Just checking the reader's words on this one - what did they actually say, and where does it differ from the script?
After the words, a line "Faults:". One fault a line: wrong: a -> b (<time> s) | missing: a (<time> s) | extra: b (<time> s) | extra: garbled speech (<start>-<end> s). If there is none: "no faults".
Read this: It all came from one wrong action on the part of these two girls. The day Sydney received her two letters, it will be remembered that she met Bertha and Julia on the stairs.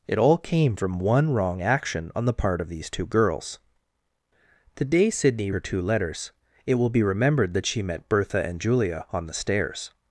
It all came from one wrong action on the part of these two girls. The day Sydney her two letters, it will be remembered that she met Bertha and Julia on the stairs.
Faults:
missing: received (5.5 s)